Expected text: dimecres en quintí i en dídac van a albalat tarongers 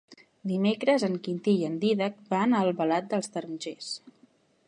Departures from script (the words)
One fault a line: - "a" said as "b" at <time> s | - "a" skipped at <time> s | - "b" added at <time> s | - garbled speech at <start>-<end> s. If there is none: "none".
- "dels" added at 3.1 s